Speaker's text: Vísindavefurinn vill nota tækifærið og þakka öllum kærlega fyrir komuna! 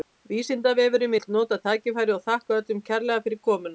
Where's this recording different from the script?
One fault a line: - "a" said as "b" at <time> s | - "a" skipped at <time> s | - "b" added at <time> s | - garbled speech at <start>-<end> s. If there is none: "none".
none